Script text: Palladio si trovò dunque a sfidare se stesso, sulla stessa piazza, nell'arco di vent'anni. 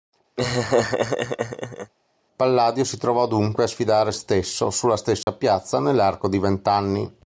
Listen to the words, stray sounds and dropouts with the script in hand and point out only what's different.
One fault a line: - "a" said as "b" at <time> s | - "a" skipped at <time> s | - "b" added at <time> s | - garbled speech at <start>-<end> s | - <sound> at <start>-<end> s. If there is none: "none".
- laugh at 0.4-1.9 s
- "se" skipped at 4.1 s
- dropout at 5.2-5.3 s